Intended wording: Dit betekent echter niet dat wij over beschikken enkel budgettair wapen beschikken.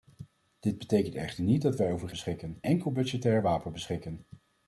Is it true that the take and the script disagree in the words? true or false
false